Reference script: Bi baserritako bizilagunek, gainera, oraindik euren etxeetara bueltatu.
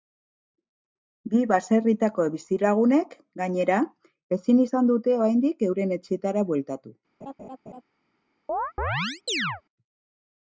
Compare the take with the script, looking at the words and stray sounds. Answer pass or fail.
fail